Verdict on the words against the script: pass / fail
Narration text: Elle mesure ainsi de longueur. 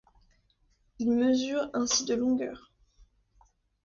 fail